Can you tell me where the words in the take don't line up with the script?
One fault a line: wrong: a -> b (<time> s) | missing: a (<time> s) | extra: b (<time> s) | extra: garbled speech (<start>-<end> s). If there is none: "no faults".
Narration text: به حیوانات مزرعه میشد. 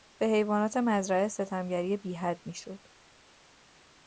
extra: ستمگری بیحد (1.3 s)